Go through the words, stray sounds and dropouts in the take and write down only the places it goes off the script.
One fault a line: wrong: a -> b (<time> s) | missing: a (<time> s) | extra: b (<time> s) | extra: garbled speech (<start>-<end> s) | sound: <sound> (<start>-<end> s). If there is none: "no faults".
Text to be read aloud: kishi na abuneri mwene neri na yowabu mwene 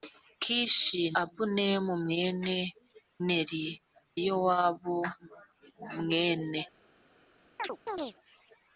missing: na (1.0 s)
missing: na (3.6 s)
sound: chirp (7.6-8.1 s)